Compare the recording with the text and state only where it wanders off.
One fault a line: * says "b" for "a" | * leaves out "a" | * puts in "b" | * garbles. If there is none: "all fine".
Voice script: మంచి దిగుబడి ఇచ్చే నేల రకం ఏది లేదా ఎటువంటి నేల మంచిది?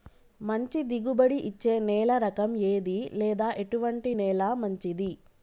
all fine